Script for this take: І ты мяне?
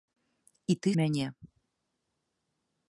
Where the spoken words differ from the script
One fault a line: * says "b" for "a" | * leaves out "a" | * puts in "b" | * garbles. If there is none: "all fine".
all fine